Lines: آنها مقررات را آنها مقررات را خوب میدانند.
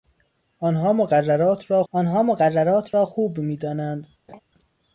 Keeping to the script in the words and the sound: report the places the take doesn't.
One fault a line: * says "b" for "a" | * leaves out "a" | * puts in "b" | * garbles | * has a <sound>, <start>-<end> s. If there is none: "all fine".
* has a laugh, 4.3-4.4 s